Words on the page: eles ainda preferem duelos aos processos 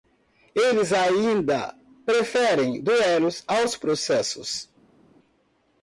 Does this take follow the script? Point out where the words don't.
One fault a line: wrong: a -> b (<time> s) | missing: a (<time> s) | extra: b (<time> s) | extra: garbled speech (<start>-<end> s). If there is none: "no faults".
no faults